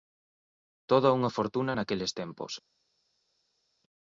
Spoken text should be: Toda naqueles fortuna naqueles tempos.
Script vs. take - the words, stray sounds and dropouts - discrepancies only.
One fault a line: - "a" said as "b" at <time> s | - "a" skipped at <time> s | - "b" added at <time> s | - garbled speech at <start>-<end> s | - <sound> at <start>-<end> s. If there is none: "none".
- "naqueles" said as "unha" at 1.2 s